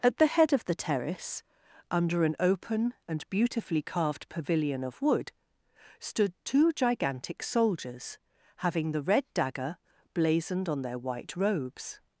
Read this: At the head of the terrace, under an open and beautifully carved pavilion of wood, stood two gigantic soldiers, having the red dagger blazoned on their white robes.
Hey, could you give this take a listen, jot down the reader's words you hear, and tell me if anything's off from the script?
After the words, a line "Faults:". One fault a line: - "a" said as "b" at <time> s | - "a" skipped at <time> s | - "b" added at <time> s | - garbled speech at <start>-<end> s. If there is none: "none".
At the head of the terrace, under an open and beautifully carved pavilion of wood, stood two gigantic soldiers, having the red dagger blazoned on their white robes.
Faults:
none